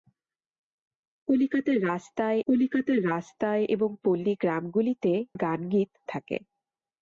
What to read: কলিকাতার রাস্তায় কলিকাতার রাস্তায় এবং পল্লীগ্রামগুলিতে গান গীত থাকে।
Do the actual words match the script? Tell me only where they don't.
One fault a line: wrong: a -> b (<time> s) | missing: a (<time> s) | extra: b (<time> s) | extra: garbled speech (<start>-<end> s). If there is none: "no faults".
no faults